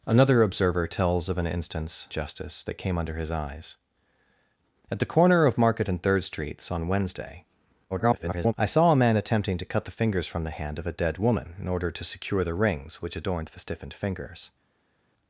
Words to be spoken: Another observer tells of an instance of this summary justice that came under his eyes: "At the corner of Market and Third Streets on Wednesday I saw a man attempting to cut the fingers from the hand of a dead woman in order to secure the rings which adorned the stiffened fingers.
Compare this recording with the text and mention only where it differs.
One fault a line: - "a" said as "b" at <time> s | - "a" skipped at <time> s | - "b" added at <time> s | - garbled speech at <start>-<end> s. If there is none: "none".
- "of this summary" skipped at 2.1 s
- garbled speech at 7.9-8.5 s